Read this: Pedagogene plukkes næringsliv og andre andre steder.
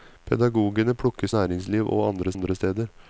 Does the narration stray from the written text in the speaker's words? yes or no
no